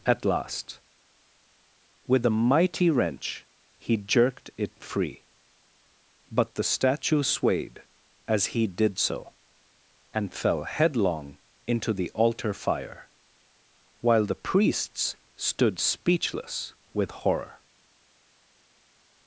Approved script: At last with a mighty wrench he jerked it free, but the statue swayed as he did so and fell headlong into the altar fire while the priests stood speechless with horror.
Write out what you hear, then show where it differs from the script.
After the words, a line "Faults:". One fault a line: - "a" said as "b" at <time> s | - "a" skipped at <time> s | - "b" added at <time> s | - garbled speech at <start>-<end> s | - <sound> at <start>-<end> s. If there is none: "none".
At last with a mighty wrench he jerked it free, but the statue swayed as he did so and fell headlong into the altar fire while the priests stood speechless with horror.
Faults:
none